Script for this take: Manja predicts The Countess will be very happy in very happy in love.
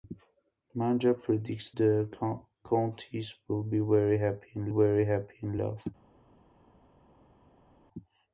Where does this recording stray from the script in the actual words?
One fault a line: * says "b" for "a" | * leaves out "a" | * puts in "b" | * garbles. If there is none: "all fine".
all fine